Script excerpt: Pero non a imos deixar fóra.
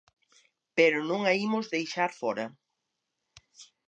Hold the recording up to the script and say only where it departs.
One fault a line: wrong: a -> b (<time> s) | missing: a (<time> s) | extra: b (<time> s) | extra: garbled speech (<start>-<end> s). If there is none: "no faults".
no faults